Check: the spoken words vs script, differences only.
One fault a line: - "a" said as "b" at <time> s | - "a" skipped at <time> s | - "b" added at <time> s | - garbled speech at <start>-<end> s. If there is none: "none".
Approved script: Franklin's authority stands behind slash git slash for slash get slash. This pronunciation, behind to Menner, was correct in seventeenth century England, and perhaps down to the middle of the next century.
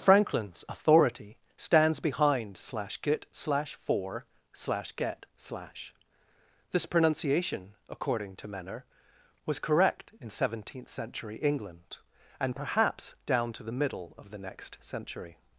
- "behind" said as "according" at 7.9 s